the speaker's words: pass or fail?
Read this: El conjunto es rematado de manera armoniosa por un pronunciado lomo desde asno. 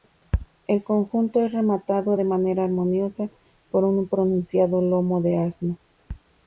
fail